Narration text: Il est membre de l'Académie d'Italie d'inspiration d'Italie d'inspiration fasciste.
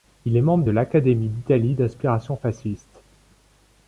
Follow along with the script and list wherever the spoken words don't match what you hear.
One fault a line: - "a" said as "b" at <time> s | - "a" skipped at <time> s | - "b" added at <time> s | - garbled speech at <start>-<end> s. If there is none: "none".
- "d'Italie d'inspiration" skipped at 2.4 s